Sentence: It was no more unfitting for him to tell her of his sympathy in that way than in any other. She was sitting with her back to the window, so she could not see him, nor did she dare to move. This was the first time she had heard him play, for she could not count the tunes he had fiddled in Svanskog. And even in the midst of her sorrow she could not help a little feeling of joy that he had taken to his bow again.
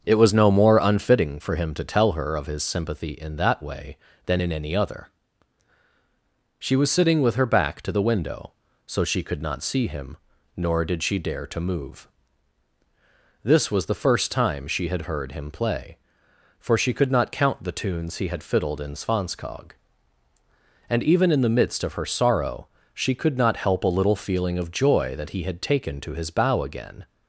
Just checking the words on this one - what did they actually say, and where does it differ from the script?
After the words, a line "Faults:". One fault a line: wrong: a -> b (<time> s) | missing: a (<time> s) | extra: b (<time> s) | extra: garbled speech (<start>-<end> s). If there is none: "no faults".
It was no more unfitting for him to tell her of his sympathy in that way than in any other. She was sitting with her back to the window, so she could not see him, nor did she dare to move. This was the first time she had heard him play, for she could not count the tunes he had fiddled in Svanskog. And even in the midst of her sorrow she could not help a little feeling of joy that he had taken to his bow again.
Faults:
no faults